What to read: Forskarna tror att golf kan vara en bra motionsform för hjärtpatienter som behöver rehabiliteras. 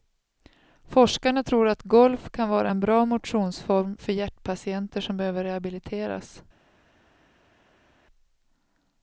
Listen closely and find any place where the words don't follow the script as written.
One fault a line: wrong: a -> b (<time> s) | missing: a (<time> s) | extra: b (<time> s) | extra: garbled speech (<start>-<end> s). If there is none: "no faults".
no faults